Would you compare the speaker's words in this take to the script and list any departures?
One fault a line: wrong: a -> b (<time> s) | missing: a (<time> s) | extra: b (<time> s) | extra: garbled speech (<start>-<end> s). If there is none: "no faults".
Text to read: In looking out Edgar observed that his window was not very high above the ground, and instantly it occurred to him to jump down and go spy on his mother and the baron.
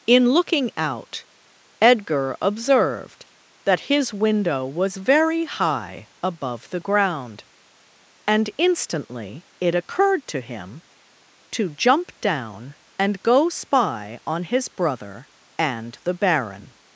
missing: not (5.0 s)
wrong: mother -> brother (14.7 s)